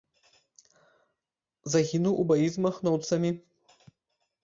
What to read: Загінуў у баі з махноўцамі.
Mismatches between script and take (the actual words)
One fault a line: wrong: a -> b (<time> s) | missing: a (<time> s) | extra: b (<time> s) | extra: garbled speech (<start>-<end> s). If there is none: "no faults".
no faults